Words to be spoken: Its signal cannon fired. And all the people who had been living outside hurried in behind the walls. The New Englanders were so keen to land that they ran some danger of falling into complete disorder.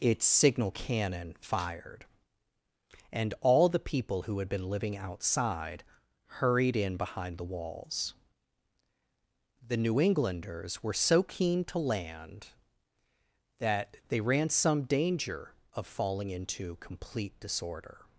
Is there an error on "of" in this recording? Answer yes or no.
no